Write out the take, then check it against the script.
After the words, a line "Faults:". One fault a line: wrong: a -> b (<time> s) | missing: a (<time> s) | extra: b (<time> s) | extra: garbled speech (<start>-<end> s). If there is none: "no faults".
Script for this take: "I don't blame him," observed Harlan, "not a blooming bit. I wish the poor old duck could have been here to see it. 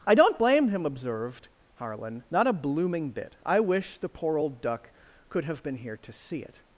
"I don't blame him," observed Harlan, "not a blooming bit. I wish the poor old duck could have been here to see it.
Faults:
no faults